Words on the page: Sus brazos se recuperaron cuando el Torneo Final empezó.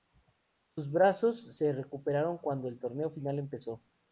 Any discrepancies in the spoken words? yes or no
no